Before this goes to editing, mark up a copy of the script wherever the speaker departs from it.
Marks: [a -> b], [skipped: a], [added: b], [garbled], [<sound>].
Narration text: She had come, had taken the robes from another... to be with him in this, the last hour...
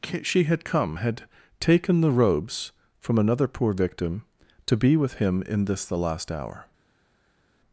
She had come, had taken the robes from another... [added: poor victim] to be with him in this, the last hour...